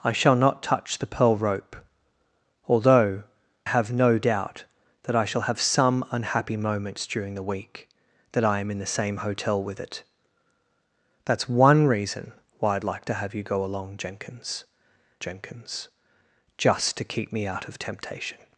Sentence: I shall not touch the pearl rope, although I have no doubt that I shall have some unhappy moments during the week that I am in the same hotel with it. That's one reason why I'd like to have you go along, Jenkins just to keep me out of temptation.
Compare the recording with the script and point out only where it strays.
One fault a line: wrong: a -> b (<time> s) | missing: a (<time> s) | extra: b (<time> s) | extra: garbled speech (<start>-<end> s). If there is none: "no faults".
missing: I (3.2 s)
extra: Jenkins (15.2 s)